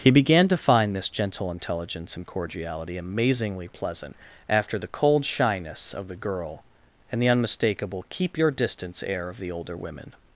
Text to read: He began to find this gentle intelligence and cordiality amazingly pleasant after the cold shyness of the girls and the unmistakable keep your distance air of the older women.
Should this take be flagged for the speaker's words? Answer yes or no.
yes